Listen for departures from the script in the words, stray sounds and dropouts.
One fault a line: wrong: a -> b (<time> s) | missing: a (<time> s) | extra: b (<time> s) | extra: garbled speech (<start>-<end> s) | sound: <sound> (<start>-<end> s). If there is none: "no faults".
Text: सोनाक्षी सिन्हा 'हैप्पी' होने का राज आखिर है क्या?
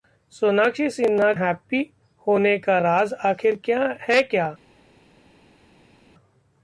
no faults